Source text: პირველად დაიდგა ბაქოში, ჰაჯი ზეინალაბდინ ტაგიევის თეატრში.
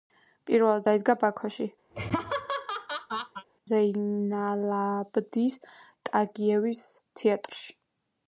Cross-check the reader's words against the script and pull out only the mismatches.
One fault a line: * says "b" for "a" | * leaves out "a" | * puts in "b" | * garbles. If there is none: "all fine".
* leaves out "ჰაჯი"